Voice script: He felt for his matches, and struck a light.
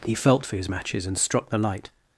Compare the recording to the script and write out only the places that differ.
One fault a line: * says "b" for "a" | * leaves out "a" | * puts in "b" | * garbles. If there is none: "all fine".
* says "the" for "a"